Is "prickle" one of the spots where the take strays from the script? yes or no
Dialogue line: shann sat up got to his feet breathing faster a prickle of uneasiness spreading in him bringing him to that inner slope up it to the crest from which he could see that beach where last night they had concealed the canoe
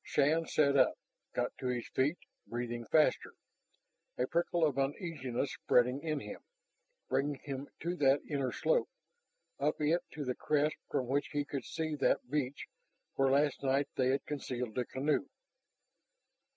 no